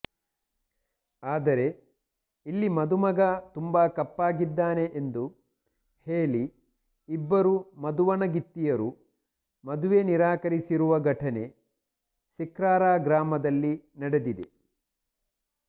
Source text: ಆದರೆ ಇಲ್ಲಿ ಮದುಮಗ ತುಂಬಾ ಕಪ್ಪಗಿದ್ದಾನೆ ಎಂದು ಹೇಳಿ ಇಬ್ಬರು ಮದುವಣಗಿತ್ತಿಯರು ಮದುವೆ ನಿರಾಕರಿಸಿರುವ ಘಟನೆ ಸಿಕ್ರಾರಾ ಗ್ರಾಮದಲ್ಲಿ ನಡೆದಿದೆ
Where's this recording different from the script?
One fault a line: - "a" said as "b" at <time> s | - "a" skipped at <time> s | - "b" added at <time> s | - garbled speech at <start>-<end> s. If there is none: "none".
none